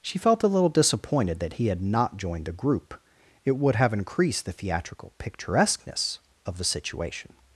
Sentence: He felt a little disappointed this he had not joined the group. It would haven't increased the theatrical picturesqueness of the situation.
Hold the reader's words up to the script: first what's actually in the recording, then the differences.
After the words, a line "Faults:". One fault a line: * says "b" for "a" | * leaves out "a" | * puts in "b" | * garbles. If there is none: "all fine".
She felt a little disappointed that he had not joined the group. It would have increased the theatrical picturesqueness of the situation.
Faults:
* says "She" for "He"
* says "that" for "this"
* says "have" for "haven't"